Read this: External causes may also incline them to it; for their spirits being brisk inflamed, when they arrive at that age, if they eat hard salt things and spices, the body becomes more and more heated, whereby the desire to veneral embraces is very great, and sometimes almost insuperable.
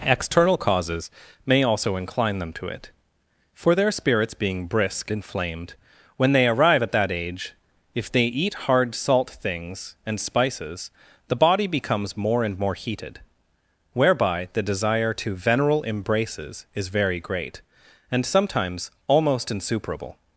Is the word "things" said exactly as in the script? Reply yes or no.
yes